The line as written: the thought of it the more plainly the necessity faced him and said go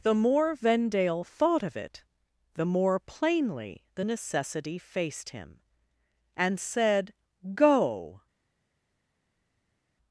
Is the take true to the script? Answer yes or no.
no